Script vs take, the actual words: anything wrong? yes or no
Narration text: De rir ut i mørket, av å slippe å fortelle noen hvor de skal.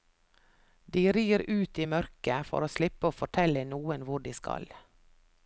yes